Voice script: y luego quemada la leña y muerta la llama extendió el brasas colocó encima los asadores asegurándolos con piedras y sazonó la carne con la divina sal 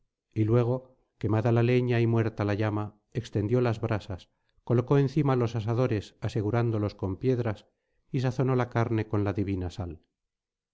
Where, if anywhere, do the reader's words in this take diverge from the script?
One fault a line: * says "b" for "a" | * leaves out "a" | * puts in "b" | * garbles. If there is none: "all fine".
* says "las" for "el"